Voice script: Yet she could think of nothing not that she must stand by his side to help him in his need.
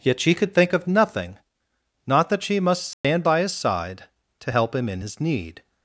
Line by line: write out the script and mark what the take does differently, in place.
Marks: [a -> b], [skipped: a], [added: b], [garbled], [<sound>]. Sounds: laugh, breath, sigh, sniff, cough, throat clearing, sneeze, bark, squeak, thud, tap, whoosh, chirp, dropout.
Yet she could think of nothing not that she must stand [dropout] by his side to help him in his need.